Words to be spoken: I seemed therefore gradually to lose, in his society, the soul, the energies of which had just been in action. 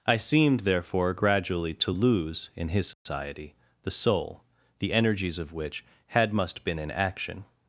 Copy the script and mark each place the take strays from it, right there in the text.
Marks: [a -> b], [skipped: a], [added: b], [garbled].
I seemed therefore gradually to lose, in his society, the soul, the energies of which had [just -> must] been in action.